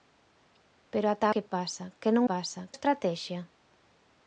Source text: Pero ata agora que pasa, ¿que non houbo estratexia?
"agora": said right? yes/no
no